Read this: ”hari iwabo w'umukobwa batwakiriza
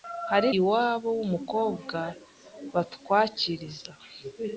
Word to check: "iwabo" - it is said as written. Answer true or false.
true